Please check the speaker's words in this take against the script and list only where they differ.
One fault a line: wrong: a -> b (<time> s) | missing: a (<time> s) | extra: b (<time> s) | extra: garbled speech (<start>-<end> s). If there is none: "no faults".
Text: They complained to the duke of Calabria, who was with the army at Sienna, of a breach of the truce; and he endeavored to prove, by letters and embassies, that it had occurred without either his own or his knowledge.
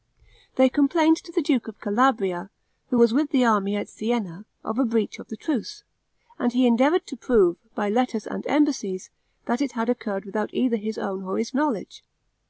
no faults